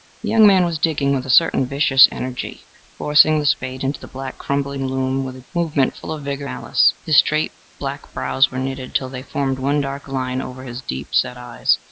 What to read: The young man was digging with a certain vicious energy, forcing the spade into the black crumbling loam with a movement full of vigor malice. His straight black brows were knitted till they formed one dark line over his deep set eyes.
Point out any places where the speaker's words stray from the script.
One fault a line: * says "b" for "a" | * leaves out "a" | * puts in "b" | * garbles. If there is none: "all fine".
all fine